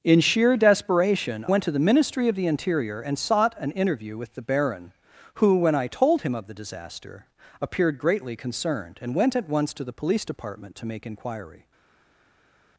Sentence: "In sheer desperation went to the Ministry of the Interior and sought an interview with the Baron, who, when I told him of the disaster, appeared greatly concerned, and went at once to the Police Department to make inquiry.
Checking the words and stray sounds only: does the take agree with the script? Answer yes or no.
yes